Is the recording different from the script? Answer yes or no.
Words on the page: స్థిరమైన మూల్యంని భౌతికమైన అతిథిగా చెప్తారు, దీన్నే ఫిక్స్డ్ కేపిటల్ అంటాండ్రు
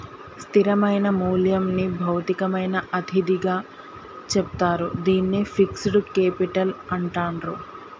no